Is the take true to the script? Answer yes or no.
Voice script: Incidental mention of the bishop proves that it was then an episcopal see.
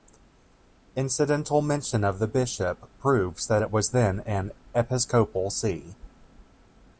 yes